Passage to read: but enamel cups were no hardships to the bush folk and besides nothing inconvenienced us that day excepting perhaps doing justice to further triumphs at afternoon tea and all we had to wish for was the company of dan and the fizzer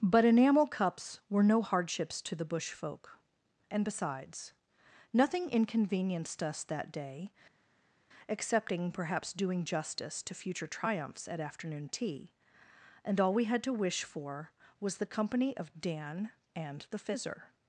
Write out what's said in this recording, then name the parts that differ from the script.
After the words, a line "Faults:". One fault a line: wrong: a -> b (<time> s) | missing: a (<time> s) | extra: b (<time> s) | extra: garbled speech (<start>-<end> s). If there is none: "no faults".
but enamel cups were no hardships to the bush folk and besides nothing inconvenienced us that day excepting perhaps doing justice to future triumphs at afternoon tea and all we had to wish for was the company of dan and the fizzer
Faults:
wrong: further -> future (10.4 s)